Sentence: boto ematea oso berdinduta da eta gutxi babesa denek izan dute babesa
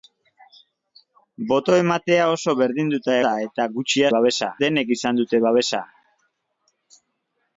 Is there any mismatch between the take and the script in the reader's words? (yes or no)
no